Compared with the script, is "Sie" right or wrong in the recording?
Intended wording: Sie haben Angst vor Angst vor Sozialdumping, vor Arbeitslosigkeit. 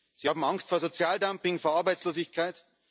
right